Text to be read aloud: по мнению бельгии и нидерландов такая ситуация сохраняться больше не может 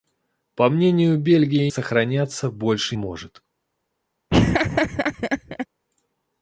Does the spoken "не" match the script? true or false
false